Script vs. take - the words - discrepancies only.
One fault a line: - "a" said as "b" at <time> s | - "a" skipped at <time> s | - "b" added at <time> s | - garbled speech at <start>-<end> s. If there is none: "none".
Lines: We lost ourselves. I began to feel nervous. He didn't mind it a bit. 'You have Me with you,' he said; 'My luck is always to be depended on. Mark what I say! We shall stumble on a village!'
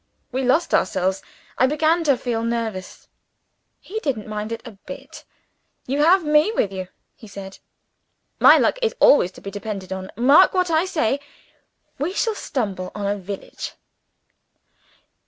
none